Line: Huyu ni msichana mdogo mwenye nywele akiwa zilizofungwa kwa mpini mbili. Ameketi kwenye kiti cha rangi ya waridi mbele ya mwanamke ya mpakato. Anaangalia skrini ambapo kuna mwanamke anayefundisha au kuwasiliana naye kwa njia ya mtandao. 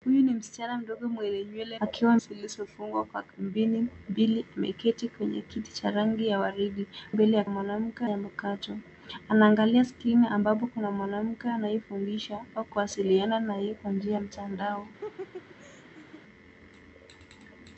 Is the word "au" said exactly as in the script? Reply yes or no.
yes